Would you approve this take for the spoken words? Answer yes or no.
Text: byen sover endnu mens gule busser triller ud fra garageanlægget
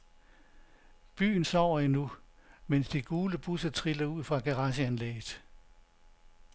no